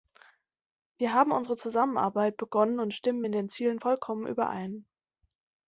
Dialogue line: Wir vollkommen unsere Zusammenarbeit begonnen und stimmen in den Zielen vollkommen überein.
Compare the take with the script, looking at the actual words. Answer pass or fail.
fail